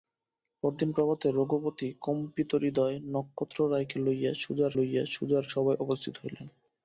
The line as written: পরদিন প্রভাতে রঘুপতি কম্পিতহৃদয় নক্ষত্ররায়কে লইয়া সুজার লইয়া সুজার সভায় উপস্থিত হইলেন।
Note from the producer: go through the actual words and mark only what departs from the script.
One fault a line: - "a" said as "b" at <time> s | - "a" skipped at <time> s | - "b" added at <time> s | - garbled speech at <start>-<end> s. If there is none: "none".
none